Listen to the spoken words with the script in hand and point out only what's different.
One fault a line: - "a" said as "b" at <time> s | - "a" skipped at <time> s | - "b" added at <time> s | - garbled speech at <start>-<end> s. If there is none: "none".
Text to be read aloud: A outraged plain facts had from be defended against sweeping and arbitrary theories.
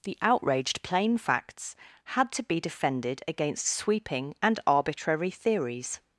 - "A" said as "The" at 0.0 s
- "from" said as "to" at 2.3 s